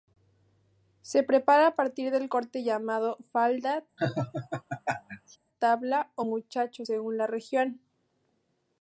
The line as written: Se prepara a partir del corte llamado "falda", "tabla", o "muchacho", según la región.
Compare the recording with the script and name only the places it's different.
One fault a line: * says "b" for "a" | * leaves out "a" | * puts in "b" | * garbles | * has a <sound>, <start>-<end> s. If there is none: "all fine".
* has a laugh, 4.0-5.4 s